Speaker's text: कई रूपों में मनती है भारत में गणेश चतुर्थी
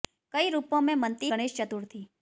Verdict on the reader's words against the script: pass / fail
fail